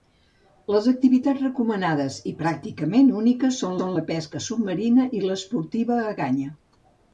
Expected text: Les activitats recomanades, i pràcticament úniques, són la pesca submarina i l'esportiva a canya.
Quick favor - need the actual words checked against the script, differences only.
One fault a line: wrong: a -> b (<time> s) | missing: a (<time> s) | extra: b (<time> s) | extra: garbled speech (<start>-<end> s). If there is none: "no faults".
extra: són (3.8 s)